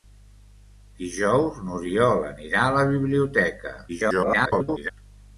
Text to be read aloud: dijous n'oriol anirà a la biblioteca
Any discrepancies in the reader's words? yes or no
yes